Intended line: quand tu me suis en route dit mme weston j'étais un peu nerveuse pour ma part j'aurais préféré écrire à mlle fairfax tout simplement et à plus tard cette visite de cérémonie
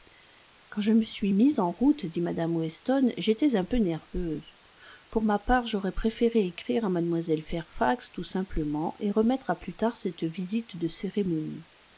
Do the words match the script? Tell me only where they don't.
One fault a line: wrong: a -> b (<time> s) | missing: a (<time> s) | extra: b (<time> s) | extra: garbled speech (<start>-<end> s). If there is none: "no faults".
wrong: tu -> je (0.8 s)
extra: mise (1.3 s)
extra: remettre (9.1 s)